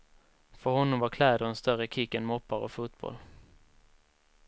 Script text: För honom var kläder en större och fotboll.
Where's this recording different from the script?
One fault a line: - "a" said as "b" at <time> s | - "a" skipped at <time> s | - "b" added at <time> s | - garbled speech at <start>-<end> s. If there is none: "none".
- "kick än moppar" added at 1.9 s